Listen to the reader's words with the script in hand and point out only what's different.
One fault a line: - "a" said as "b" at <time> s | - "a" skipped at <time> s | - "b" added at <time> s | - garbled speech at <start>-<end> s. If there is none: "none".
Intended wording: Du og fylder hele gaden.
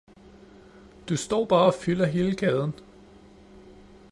- "står bare" added at 1.2 s